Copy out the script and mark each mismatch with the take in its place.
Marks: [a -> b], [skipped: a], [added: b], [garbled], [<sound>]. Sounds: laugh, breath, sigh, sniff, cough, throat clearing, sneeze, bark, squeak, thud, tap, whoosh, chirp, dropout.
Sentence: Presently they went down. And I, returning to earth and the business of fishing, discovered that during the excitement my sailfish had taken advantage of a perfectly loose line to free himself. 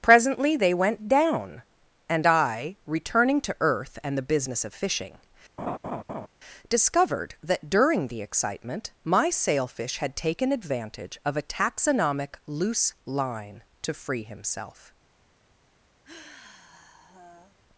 Presently they went down. And I, returning to earth and the business of fishing, [laugh] discovered that during the excitement my sailfish had taken advantage of a [perfectly -> taxonomic] loose line to free himself. [sigh]